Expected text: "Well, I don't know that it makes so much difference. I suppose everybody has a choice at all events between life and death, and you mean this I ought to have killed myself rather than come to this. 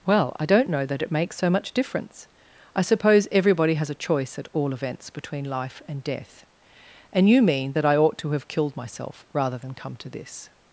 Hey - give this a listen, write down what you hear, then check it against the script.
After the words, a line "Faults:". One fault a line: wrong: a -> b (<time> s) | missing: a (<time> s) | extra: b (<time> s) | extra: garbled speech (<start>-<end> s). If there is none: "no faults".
"Well, I don't know that it makes so much difference. I suppose everybody has a choice at all events between life and death, and you mean that I ought to have killed myself rather than come to this.
Faults:
wrong: this -> that (7.7 s)